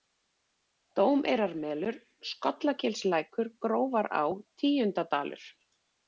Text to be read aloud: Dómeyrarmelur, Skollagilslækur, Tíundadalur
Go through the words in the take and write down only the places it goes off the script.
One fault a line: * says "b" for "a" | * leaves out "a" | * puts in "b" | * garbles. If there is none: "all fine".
* puts in "Grófará"